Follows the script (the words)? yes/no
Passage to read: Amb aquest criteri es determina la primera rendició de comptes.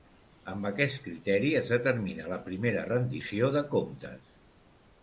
yes